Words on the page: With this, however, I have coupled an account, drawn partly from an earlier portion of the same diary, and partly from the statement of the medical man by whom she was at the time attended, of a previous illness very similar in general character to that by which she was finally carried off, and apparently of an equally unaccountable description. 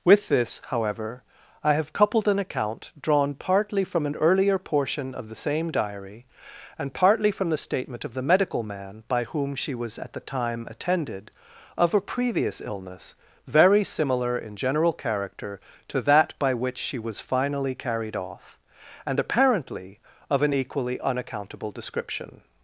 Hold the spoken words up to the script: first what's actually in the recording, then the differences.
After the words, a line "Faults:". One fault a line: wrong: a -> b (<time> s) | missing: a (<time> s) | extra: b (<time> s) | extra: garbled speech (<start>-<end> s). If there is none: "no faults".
With this, however, I have coupled an account, drawn partly from an earlier portion of the same diary, and partly from the statement of the medical man by whom she was at the time attended, of a previous illness very similar in general character to that by which she was finally carried off, and apparently of an equally unaccountable description.
Faults:
no faults